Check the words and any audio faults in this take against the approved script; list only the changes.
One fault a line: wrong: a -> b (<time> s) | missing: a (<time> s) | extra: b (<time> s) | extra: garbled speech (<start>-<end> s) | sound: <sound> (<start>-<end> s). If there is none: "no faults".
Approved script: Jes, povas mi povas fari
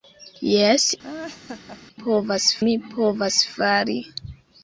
sound: laugh (1.0-1.8 s)